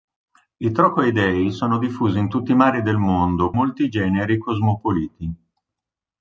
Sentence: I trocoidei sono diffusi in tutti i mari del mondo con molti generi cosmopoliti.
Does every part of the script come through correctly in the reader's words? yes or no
no